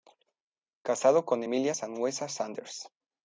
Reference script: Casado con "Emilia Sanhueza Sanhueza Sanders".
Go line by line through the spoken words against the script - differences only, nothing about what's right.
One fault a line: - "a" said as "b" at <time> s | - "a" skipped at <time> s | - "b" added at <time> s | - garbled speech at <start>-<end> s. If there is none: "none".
- "Sanhueza" skipped at 2.3 s